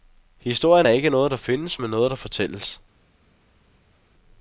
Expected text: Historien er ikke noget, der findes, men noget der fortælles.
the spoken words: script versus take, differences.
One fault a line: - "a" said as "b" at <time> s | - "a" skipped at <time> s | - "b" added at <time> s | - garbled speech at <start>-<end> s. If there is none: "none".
none